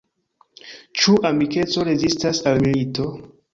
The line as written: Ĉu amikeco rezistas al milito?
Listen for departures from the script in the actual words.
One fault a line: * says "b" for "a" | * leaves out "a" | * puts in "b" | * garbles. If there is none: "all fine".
all fine